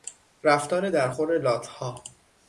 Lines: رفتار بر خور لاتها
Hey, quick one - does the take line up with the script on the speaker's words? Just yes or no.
no